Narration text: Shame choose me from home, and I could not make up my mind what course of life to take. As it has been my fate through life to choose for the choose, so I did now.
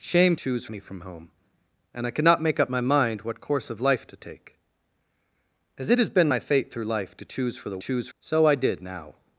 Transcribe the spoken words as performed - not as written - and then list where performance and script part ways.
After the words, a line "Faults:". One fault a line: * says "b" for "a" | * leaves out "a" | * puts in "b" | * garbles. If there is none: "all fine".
Shame choose me from home, and I could not make up my mind what course of life to take. As it has been my fate through life to choose for the choose, so I did now.
Faults:
all fine